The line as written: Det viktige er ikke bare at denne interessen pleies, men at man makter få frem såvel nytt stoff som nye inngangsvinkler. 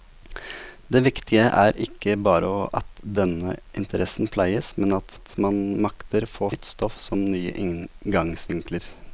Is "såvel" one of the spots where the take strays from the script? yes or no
yes